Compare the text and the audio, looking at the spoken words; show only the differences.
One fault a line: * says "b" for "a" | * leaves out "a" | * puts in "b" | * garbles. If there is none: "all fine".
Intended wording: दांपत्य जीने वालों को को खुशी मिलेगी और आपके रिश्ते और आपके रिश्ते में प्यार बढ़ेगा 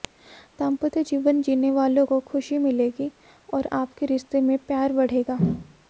* puts in "जीवन"
* leaves out "को"
* leaves out "और आपके रिश्ते"